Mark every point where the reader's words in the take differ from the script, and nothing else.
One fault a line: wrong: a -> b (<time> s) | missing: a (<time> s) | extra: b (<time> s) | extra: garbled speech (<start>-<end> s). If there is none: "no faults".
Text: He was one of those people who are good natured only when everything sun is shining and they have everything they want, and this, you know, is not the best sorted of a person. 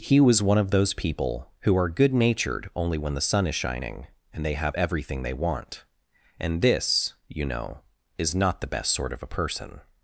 wrong: everything -> the (3.2 s)
wrong: sorted -> sort (8.9 s)